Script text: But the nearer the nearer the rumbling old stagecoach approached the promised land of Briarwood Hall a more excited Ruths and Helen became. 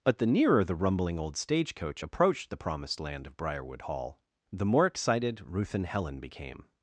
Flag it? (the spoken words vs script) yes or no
yes